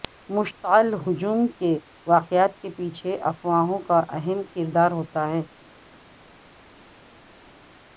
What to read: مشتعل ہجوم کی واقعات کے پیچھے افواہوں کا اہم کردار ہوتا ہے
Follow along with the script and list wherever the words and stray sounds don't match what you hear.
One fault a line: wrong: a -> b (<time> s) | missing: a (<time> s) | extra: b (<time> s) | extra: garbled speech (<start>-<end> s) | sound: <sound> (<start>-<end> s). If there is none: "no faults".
wrong: کی -> کے (1.5 s)